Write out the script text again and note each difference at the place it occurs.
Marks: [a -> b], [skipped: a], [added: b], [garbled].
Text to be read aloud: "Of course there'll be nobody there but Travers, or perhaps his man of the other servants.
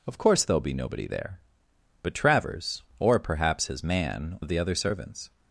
"Of course there'll be nobody there but Travers, or perhaps his man of the other servants.